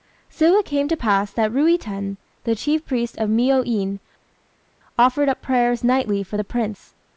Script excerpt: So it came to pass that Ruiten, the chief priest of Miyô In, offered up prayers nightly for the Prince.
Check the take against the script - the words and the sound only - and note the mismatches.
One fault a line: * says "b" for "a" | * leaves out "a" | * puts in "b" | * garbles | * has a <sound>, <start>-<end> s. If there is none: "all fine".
all fine